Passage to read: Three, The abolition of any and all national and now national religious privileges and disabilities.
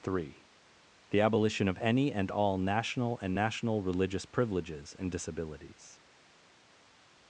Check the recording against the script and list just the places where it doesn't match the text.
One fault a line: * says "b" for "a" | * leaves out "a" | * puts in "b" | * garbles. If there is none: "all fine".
* leaves out "now"